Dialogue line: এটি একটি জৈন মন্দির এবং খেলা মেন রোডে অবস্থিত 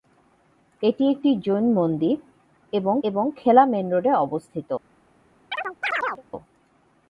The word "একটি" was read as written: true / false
true